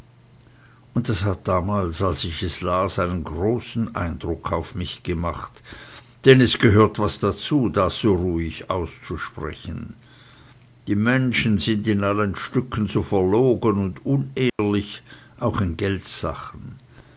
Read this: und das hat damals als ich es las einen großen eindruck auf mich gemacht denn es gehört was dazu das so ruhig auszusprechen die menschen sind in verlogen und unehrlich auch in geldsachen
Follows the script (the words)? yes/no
no